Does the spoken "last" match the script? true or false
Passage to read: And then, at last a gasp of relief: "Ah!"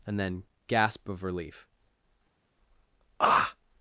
false